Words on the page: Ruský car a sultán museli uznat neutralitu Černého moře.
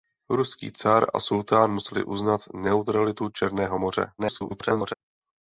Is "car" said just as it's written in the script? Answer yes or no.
yes